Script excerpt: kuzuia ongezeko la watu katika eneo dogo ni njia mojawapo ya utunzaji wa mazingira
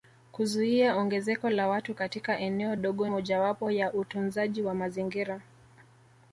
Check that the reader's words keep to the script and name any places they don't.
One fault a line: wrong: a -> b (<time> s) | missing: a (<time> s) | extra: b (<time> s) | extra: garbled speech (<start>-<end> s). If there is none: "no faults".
missing: ni njia (3.1 s)